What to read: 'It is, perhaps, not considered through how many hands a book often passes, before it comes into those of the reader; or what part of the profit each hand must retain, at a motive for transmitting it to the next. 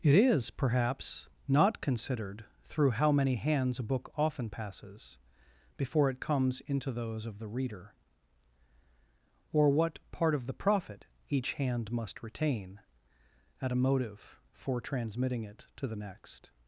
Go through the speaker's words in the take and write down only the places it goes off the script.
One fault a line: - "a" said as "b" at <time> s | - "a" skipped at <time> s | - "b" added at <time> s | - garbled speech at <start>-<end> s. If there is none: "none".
none